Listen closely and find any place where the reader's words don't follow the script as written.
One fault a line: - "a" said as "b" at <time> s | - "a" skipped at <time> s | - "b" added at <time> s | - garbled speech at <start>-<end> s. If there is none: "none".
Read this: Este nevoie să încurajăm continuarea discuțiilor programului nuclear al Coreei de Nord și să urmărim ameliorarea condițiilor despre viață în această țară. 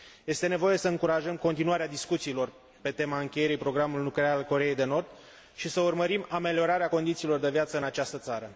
- "pe tema încheierii" added at 2.8 s
- "despre" said as "de" at 7.4 s